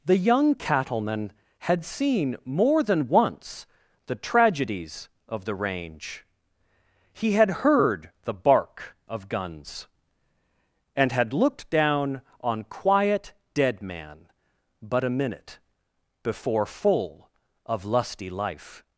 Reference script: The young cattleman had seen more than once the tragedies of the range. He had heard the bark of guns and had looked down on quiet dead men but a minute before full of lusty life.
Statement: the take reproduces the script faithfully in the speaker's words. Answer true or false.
false